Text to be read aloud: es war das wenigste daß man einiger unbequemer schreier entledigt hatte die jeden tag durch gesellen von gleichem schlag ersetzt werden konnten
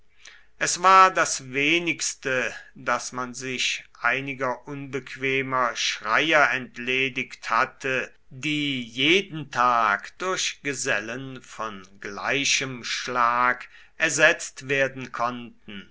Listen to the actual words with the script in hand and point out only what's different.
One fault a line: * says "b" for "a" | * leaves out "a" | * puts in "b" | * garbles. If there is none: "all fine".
* puts in "sich"